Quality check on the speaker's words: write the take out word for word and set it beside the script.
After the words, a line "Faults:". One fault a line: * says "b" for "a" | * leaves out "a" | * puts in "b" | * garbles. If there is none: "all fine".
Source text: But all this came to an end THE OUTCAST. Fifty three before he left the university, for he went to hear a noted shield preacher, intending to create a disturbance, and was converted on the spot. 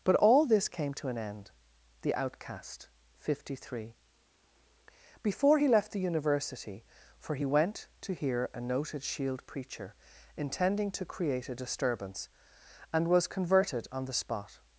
But all this came to an end THE OUTCAST. Fifty three before he left the university, for he went to hear a noted shield preacher, intending to create a disturbance, and was converted on the spot.
Faults:
all fine